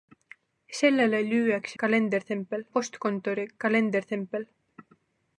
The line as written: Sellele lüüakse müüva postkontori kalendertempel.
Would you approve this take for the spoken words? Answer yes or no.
no